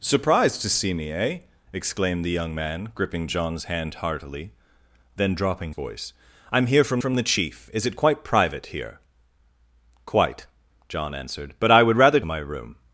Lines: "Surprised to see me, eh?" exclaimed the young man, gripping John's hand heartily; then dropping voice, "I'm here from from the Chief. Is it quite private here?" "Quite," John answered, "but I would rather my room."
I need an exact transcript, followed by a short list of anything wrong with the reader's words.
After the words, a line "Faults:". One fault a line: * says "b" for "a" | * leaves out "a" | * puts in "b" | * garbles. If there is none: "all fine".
"Surprised to see me, eh?" exclaimed the young man, gripping John's hand heartily; then dropping voice, "I'm here from from the Chief. Is it quite private here?" "Quite," John answered, "but I would rather my room."
Faults:
all fine